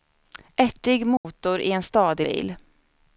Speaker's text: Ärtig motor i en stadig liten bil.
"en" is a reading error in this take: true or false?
false